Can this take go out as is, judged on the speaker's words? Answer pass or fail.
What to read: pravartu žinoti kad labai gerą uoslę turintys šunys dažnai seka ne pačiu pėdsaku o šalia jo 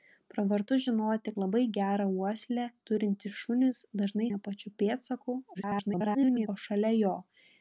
fail